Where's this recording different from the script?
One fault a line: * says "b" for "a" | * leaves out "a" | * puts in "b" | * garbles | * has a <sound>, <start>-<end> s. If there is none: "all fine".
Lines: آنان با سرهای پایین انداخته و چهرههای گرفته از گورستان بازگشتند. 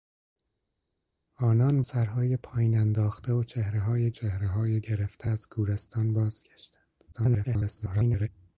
* leaves out "با"
* puts in "چهرههای"
* garbles